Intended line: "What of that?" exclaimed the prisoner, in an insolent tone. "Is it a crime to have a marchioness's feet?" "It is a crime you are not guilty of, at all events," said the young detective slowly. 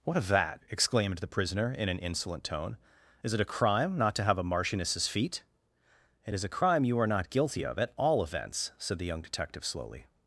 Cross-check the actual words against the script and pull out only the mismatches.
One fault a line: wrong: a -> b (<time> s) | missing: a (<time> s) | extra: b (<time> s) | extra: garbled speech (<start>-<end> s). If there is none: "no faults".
extra: not (4.0 s)